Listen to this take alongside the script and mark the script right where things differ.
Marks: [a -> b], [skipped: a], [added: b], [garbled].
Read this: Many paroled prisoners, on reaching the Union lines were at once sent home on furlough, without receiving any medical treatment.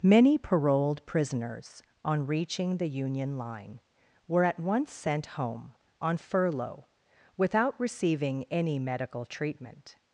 Many paroled prisoners, on reaching the Union [lines -> line] were at once sent home on furlough, without receiving any medical treatment.